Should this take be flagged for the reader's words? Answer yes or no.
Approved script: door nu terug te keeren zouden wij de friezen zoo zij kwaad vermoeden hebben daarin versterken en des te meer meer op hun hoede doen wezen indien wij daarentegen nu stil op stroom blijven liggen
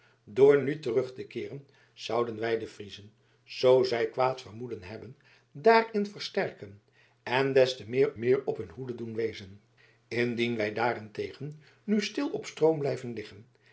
no